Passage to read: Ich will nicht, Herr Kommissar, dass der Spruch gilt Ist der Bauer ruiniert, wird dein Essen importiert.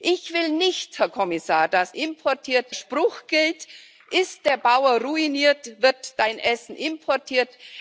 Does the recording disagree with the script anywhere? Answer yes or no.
yes